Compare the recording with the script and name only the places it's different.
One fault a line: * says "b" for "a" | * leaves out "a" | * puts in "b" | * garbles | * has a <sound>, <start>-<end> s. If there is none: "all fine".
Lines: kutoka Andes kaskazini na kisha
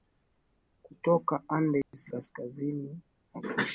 * has a dropout, 1.8-1.9 s